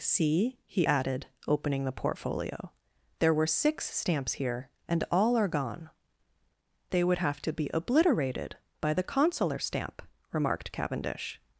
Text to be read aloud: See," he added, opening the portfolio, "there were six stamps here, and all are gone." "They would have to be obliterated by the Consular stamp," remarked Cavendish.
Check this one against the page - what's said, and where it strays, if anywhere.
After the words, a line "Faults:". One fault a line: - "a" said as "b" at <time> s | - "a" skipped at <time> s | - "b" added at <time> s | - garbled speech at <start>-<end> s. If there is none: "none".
See," he added, opening the portfolio, "there were six stamps here, and all are gone." "They would have to be obliterated by the Consular stamp," remarked Cavendish.
Faults:
none